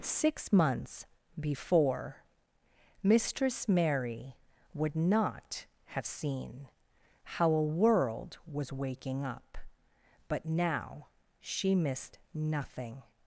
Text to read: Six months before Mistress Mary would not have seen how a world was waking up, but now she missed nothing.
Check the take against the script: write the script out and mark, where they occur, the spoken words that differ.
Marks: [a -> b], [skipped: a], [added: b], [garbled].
Six months before Mistress Mary would not have seen how a world was waking up, but now she missed nothing.